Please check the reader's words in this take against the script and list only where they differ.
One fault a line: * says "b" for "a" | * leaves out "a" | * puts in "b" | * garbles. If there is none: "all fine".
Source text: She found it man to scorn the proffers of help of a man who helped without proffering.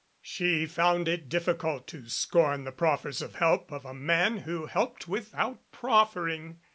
* says "difficult" for "man"